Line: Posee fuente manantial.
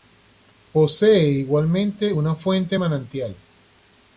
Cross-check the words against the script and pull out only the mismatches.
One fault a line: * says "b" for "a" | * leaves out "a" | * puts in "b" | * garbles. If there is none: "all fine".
* puts in "igualmente una"